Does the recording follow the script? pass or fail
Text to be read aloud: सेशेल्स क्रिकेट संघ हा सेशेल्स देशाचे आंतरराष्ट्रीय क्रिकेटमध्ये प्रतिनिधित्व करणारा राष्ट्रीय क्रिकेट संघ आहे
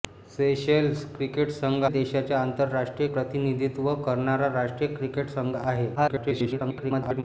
fail